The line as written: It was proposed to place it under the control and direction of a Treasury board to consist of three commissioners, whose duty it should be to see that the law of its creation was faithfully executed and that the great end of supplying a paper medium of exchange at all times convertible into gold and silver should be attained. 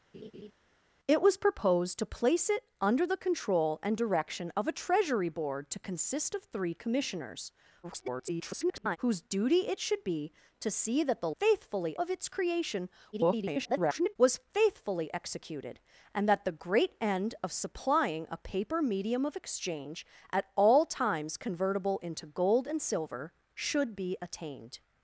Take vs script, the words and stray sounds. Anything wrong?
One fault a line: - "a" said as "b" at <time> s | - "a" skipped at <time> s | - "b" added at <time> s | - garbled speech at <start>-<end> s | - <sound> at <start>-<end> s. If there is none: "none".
- laugh at 0.1-0.5 s
- garbled speech at 7.8-9.0 s
- "law" said as "faithfully" at 11.4 s
- garbled speech at 13.1-14.2 s